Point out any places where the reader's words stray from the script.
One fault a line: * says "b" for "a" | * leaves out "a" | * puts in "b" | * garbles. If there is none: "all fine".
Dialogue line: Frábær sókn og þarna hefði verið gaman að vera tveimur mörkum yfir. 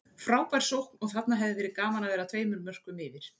all fine